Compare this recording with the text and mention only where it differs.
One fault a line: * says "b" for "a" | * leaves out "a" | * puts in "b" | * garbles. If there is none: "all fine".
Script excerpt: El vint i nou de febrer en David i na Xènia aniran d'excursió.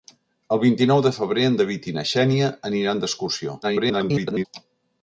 * garbles